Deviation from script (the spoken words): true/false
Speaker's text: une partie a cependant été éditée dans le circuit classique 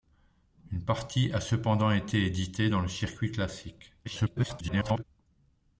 true